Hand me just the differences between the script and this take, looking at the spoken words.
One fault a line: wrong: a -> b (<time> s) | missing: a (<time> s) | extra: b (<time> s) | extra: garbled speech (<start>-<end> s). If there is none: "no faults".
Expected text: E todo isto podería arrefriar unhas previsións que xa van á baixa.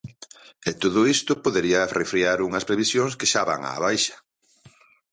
no faults